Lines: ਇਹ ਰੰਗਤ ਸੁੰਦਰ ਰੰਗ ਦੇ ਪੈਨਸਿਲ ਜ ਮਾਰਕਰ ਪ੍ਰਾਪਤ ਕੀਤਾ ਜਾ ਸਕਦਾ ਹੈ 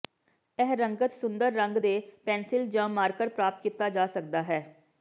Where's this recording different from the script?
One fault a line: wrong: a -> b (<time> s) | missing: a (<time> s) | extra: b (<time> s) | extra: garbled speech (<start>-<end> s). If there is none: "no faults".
no faults